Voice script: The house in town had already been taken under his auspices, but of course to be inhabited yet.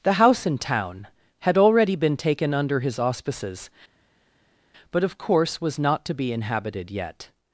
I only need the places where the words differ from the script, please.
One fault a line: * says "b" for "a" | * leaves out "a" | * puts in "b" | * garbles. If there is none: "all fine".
* puts in "was not"